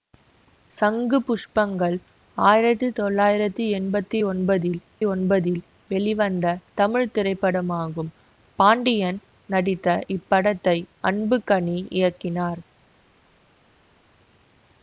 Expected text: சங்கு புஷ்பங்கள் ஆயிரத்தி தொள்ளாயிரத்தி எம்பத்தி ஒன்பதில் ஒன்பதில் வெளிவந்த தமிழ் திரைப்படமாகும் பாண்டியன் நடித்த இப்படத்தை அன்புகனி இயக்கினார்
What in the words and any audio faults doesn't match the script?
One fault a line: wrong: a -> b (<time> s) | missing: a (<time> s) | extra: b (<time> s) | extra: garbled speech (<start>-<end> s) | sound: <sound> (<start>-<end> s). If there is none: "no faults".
no faults